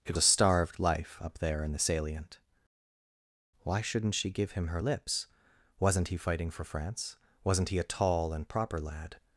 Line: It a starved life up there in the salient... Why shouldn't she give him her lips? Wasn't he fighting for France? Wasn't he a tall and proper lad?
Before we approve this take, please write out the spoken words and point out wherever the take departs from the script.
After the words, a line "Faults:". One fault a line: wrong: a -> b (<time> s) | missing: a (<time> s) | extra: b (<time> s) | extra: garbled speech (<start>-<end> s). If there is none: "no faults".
It a starved life up there in the salient... Why shouldn't she give him her lips? Wasn't he fighting for France? Wasn't he a tall and proper lad?
Faults:
no faults